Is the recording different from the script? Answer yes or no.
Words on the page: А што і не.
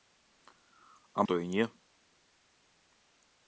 no